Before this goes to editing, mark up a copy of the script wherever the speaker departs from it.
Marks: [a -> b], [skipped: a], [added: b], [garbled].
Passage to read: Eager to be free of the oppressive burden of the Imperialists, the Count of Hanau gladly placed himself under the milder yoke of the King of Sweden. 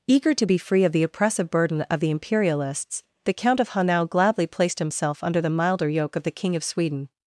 Eager to be free of the oppressive burden of the Imperialists, the Count of Hanau gladly placed himself under the milder yoke of the King of Sweden.